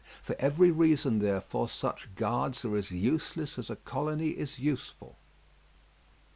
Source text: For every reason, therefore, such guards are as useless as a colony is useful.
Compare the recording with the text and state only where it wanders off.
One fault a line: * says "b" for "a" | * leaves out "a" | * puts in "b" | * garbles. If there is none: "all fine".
all fine